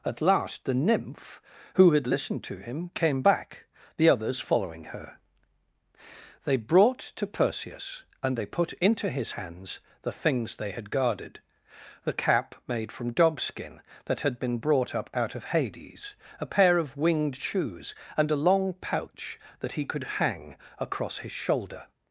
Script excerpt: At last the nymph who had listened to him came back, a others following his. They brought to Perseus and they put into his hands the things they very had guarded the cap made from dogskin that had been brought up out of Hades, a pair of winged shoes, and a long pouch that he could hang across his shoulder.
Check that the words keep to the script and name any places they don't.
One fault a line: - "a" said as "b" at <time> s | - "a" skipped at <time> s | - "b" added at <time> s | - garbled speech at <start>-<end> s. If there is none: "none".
- "a" said as "the" at 4.0 s
- "his" said as "her" at 4.8 s
- "very" skipped at 10.7 s